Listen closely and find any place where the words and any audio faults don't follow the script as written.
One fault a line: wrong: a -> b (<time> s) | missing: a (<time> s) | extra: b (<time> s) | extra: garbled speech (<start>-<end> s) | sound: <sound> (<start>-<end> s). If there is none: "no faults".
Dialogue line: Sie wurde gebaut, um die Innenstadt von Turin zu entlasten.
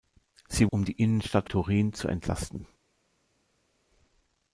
missing: wurde gebaut (0.7 s)
missing: von (1.5 s)